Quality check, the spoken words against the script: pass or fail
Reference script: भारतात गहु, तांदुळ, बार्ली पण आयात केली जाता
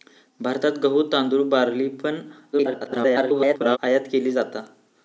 fail